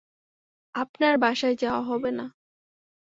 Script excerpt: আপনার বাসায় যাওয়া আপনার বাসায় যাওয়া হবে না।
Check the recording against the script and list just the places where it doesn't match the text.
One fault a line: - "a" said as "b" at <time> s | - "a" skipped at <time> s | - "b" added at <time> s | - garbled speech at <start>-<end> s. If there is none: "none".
- "আপনার বাসায় যাওয়া" skipped at 1.8 s